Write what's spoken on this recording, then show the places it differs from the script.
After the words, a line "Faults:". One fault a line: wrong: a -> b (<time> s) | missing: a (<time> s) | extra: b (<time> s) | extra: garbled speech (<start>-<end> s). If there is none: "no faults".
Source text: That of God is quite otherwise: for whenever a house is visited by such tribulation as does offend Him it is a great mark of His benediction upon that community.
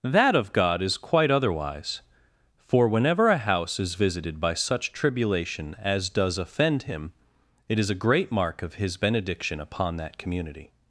That of God is quite otherwise: for whenever a house is visited by such tribulation as does offend Him it is a great mark of His benediction upon that community.
Faults:
no faults